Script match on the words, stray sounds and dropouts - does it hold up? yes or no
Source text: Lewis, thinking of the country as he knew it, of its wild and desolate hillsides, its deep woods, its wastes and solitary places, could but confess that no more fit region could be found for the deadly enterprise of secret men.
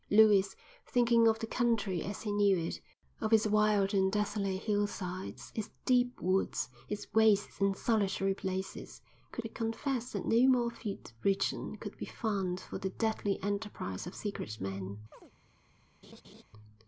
no